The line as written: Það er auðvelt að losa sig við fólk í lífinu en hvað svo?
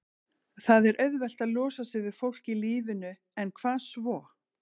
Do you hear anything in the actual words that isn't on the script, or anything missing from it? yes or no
no